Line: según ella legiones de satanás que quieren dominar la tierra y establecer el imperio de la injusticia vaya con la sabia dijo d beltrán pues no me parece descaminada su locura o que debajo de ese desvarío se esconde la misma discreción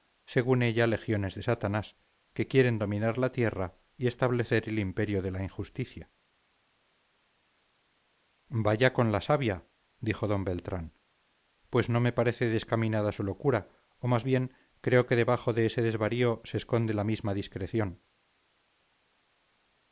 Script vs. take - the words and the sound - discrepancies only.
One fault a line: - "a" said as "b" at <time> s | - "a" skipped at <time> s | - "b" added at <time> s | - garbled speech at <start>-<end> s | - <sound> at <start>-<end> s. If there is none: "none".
- "más bien creo" added at 14.1 s